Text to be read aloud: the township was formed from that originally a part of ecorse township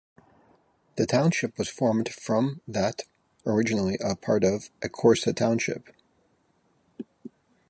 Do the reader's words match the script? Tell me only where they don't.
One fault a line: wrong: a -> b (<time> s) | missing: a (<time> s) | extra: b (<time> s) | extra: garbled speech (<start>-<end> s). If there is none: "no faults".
no faults